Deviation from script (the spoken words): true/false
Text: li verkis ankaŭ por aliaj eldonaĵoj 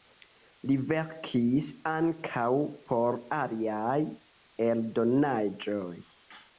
false